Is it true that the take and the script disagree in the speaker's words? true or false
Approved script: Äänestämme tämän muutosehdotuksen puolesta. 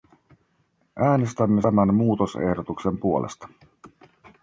false